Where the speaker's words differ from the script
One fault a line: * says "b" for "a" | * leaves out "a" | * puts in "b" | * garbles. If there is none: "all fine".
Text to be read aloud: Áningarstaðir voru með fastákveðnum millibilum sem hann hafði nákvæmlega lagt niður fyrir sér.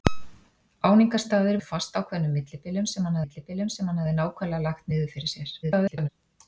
* leaves out "voru"
* puts in "millibilum sem hann"
* garbles